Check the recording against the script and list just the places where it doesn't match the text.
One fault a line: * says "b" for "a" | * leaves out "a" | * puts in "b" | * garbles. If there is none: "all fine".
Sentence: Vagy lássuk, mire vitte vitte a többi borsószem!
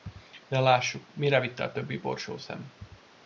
* says "De" for "Vagy"
* leaves out "vitte"